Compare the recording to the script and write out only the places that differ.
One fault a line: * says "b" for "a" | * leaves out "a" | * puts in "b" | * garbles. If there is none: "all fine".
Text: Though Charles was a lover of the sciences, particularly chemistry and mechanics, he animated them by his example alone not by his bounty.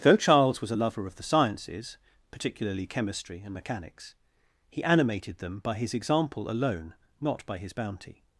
all fine